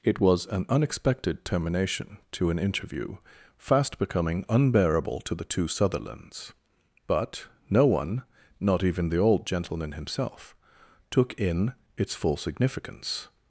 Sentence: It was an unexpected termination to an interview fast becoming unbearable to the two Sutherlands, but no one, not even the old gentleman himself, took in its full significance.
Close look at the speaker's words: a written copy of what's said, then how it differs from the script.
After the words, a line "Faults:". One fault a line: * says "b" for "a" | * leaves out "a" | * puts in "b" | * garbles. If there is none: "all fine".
It was an unexpected termination to an interview fast becoming unbearable to the two Sutherlands, but no one, not even the old gentleman himself, took in its full significance.
Faults:
all fine